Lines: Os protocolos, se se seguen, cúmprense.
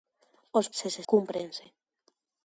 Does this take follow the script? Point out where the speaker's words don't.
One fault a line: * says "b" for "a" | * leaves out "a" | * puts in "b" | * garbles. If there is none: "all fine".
* leaves out "protocolos"
* leaves out "seguen"